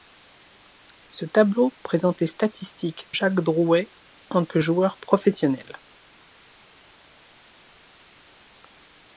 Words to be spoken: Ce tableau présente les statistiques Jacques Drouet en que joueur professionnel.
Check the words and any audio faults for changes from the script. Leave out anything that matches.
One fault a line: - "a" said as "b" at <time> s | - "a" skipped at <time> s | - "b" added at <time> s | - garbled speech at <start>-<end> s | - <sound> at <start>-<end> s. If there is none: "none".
none